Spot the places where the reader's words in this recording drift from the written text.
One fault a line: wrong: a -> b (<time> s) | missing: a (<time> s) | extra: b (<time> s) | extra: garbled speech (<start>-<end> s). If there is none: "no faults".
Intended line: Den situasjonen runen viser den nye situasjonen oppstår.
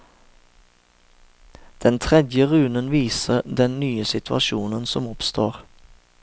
wrong: situasjonen -> tredje (2.0 s)
extra: som (4.9 s)